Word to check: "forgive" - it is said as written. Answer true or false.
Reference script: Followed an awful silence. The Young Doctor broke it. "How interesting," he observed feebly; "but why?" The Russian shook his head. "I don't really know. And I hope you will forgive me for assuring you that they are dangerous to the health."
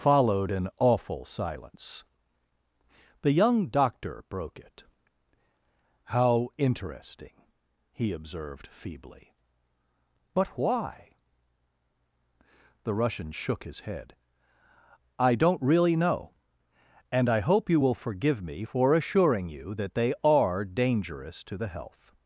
true